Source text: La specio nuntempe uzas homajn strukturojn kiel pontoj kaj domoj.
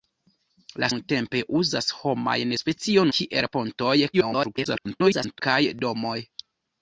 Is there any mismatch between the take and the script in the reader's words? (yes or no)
yes